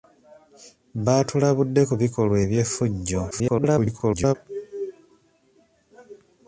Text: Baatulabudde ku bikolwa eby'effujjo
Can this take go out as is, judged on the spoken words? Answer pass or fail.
fail